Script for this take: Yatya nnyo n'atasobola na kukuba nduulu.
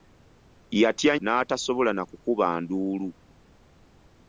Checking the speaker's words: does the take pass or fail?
fail